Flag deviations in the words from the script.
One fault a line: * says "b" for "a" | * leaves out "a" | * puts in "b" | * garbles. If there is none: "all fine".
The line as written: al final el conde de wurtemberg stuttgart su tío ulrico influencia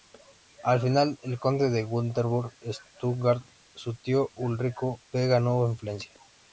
* puts in "v ganó"